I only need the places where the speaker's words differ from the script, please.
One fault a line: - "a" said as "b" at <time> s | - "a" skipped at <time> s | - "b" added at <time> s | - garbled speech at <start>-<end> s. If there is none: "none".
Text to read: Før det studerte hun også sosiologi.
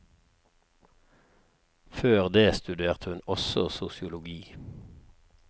none